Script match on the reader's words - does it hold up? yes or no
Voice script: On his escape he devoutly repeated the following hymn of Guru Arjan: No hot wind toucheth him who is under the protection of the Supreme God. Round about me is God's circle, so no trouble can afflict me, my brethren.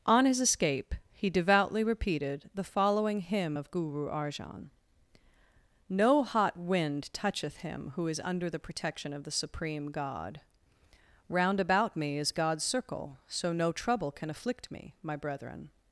yes